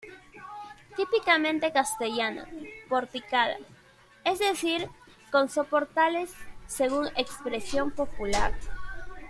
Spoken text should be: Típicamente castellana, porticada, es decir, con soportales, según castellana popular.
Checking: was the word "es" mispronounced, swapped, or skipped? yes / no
no